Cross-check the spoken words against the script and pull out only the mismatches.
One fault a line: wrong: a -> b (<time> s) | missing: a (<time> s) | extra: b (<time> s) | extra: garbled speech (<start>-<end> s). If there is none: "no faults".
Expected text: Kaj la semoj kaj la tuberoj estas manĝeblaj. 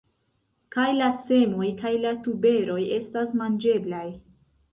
no faults